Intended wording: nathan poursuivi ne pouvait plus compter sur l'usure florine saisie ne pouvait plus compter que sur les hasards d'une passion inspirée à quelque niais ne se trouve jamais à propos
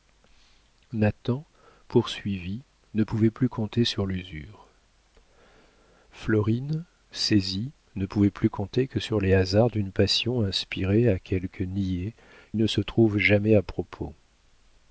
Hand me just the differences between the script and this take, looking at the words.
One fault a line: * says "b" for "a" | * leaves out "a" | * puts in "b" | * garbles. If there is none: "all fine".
all fine